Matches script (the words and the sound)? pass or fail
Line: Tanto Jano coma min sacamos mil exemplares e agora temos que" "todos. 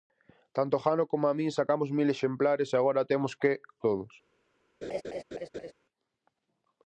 fail